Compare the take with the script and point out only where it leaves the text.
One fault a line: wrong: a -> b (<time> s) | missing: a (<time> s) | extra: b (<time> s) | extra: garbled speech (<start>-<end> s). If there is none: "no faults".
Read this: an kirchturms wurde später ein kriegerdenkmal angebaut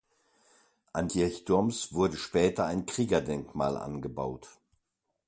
no faults